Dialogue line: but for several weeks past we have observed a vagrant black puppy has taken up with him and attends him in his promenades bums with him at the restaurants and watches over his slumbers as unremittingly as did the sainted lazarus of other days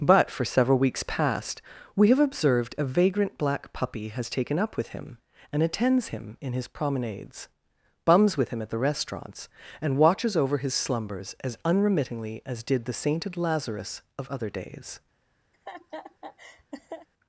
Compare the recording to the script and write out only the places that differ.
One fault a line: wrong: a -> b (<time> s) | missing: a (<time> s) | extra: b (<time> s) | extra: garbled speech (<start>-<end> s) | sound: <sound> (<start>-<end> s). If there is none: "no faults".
sound: laugh (15.5-17.1 s)